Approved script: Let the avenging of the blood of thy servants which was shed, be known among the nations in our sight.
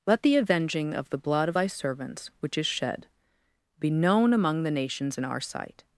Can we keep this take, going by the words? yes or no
no